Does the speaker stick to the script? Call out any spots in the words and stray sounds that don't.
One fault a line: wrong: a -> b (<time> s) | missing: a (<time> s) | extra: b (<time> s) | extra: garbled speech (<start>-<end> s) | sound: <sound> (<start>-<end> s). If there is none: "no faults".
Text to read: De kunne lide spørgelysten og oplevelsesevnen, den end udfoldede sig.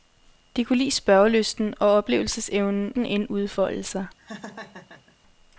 sound: laugh (4.2-5.2 s)